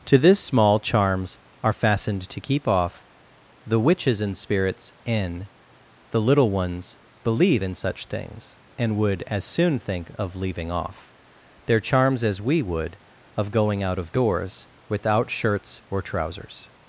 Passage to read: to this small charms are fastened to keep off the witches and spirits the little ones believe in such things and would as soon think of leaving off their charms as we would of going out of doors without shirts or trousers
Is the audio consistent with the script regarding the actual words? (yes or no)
no